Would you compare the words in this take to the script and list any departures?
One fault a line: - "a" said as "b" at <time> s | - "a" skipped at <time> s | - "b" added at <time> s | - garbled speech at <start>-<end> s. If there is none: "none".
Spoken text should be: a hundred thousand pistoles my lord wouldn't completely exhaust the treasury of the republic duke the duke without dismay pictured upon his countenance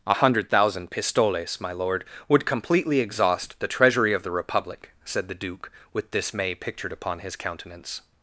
- "wouldn't" said as "would" at 2.3 s
- "duke" said as "said" at 5.0 s
- "without" said as "with" at 5.9 s